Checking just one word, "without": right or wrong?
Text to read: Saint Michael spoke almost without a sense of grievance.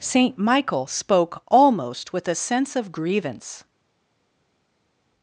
wrong